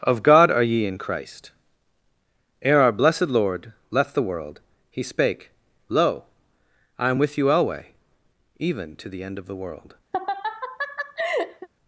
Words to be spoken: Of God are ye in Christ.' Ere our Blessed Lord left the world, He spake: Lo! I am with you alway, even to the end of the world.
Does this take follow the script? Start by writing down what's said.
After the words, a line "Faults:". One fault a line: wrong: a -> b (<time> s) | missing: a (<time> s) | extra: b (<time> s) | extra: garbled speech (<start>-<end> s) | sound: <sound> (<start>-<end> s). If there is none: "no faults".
Of God are ye in Christ.' Ere our Blessed Lord left the world, He spake: Lo! I am with you alway, even to the end of the world.
Faults:
sound: laugh (10.1-11.7 s)